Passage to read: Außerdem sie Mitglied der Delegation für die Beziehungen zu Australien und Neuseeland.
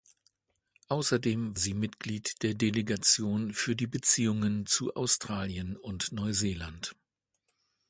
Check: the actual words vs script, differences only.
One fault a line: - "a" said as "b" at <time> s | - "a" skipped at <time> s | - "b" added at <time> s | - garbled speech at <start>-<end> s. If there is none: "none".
none